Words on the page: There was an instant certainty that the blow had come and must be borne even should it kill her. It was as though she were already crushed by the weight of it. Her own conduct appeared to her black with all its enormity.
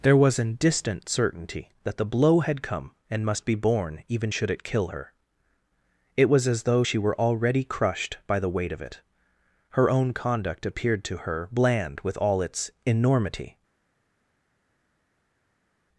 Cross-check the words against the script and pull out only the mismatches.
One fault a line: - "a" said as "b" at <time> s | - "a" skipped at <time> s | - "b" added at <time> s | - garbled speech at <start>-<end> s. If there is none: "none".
- "instant" said as "distant" at 0.6 s
- "black" said as "bland" at 11.5 s